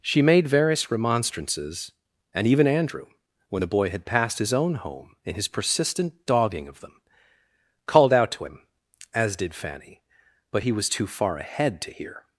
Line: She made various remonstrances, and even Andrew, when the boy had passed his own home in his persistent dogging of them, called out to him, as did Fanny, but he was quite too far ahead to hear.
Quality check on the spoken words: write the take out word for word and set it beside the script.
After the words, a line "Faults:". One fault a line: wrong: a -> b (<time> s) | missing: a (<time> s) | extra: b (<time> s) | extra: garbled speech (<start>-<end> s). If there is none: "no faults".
She made various remonstrances, and even Andrew, when the boy had passed his own home in his persistent dogging of them, called out to him, as did Fanny, but he was too far ahead to hear.
Faults:
missing: quite (10.9 s)